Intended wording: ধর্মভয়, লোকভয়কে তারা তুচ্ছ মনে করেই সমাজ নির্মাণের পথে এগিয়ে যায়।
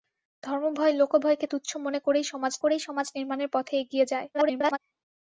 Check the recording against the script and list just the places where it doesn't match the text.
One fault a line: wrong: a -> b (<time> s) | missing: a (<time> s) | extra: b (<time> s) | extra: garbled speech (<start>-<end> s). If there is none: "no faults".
missing: তারা (1.4 s)
extra: করেই সমাজ (2.6 s)
extra: garbled speech (4.3-4.8 s)